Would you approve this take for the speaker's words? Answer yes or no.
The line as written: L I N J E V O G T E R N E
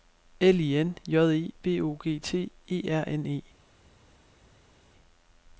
yes